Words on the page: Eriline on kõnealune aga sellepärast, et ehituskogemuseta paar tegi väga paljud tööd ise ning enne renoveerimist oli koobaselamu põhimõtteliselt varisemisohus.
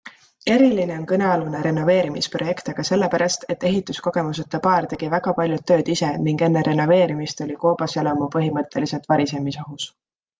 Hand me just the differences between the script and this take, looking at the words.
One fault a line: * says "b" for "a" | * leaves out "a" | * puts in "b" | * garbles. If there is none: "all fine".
* puts in "renoveerimisprojekt"